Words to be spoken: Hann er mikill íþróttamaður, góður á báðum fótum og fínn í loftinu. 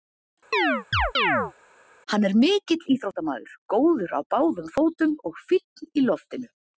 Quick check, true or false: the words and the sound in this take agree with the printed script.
false